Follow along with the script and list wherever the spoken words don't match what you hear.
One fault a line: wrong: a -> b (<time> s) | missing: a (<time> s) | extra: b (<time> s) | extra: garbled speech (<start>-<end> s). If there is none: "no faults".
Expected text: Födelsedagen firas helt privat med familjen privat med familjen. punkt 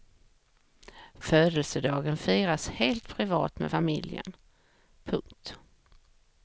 missing: privat med familjen (4.4 s)